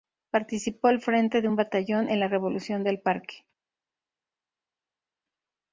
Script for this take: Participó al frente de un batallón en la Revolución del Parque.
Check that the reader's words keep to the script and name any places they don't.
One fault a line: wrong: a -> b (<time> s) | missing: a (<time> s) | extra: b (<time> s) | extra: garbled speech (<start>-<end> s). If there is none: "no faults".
no faults